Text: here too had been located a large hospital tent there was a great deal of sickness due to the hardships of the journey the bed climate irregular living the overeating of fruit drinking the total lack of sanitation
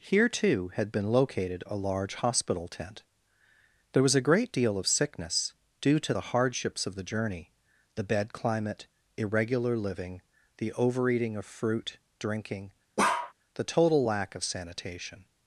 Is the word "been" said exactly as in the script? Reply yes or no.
yes